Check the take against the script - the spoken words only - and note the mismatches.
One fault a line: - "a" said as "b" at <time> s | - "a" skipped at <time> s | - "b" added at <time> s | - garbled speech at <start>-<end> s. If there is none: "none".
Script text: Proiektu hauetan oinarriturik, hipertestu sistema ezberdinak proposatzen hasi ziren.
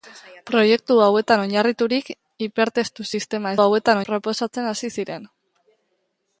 - "ezberdinak" said as "hauetan" at 3.6 s